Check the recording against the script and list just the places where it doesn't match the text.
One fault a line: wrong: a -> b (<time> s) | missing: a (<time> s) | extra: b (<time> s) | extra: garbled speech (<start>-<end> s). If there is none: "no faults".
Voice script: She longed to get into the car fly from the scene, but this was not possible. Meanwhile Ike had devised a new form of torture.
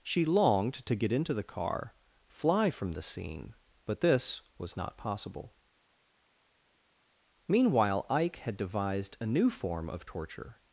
no faults